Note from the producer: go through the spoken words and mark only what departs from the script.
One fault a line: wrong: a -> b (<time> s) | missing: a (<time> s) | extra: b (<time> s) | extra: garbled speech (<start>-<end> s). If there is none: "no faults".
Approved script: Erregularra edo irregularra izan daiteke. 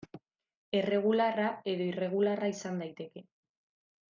no faults